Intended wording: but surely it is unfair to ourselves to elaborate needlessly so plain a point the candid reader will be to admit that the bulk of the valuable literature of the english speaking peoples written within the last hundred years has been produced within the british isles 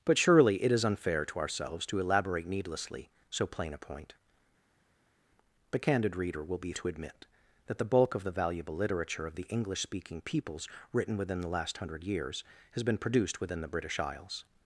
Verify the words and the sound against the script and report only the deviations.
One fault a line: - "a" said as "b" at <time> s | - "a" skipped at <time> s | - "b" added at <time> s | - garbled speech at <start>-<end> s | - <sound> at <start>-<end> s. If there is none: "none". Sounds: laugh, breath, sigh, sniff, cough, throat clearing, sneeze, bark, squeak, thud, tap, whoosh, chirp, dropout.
none